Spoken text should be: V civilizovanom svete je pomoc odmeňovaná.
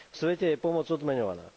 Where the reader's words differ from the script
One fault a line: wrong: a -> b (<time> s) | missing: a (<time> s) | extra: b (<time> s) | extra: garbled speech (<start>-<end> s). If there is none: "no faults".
missing: civilizovanom (0.2 s)